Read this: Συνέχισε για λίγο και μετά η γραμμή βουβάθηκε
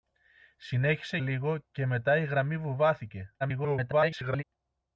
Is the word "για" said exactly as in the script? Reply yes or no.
no